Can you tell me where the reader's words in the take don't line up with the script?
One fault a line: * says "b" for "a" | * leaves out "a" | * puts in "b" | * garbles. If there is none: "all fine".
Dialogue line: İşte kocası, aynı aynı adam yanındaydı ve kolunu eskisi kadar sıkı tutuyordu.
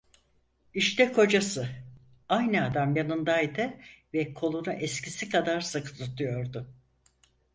* leaves out "aynı"